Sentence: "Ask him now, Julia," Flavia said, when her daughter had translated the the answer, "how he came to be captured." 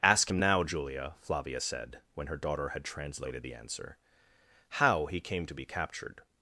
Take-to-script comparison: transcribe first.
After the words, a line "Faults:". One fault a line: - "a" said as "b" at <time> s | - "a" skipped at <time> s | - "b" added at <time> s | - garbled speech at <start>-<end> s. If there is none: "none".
"Ask him now, Julia," Flavia said, when her daughter had translated the answer, "how he came to be captured."
Faults:
- "the" skipped at 3.5 s